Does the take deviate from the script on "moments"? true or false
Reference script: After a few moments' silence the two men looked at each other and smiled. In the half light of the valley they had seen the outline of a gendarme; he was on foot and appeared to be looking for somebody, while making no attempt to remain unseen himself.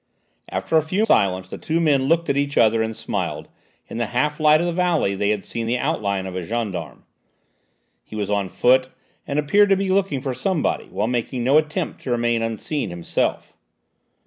true